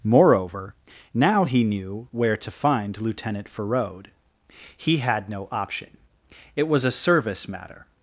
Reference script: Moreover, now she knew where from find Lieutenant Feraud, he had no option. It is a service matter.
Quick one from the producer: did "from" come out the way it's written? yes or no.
no